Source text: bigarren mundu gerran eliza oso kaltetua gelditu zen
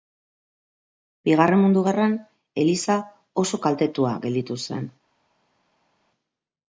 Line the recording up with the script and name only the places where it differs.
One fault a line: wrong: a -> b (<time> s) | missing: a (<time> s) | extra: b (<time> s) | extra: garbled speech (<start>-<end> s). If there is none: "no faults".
no faults